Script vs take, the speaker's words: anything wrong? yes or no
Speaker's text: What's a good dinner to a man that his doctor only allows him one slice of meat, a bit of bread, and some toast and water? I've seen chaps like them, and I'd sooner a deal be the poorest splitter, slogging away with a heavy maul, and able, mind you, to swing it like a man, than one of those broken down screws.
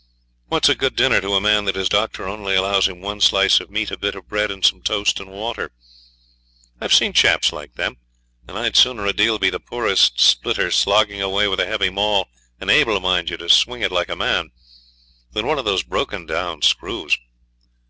no